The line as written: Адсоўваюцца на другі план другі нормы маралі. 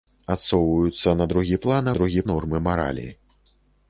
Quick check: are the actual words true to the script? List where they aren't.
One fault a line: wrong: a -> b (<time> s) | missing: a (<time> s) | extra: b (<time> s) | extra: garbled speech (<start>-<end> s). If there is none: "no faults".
no faults